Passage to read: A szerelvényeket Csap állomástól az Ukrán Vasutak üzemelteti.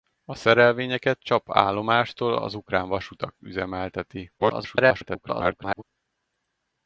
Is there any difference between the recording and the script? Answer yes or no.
yes